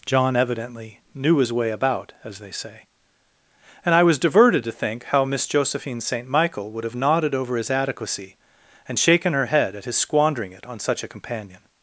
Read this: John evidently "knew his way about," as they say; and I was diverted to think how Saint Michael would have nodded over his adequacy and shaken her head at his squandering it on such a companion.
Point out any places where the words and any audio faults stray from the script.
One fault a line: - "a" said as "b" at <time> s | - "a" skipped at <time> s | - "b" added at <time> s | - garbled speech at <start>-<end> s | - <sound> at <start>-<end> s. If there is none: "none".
- "Miss Josephine" added at 5.2 s